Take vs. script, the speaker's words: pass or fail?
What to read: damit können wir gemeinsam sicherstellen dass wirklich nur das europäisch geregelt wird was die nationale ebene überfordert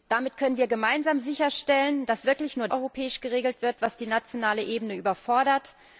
fail